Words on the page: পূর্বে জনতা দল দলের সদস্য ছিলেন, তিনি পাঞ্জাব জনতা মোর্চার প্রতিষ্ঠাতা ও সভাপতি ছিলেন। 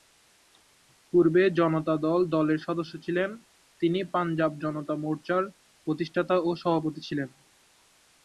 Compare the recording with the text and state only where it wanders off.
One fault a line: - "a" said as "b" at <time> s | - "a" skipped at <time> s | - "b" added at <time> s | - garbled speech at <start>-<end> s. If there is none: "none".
none